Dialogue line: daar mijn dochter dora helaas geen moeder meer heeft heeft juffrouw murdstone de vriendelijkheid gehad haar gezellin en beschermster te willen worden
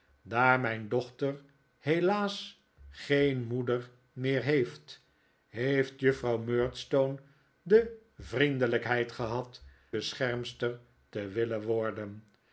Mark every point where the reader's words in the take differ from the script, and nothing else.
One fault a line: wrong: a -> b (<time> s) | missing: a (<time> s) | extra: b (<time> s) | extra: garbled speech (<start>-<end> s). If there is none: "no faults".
missing: dora (1.4 s)
missing: haar gezellin en (9.6 s)